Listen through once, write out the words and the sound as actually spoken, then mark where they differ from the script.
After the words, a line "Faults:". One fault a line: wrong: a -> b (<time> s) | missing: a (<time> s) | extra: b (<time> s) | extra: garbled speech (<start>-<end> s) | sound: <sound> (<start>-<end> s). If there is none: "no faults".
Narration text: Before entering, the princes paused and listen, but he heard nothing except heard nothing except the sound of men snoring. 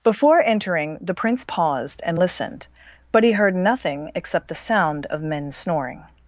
Before entering, the prince paused and listened, but he heard nothing except the sound of men snoring.
Faults:
wrong: princes -> prince (1.1 s)
wrong: listen -> listened (2.2 s)
missing: heard nothing except (4.5 s)